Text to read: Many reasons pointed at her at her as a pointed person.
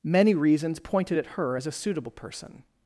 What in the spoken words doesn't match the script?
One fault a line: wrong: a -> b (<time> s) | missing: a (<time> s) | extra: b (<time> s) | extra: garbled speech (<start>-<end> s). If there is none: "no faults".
missing: at her (1.6 s)
wrong: pointed -> suitable (1.7 s)